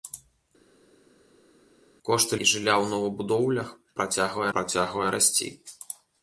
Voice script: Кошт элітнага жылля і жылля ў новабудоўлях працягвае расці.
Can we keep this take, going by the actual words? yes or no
no